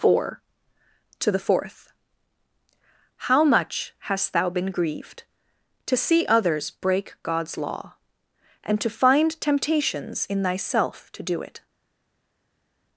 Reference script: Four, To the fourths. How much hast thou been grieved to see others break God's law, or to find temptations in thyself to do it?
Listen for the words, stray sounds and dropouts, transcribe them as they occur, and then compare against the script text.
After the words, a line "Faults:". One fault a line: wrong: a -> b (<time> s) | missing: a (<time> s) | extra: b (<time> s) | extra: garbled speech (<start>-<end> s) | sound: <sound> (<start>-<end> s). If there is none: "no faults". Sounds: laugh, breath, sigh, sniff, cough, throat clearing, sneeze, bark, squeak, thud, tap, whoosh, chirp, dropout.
Four, To the fourth. How much hast thou been grieved to see others break God's law, and to find temptations in thyself to do it?
Faults:
wrong: fourths -> fourth (1.4 s)
wrong: or -> and (8.6 s)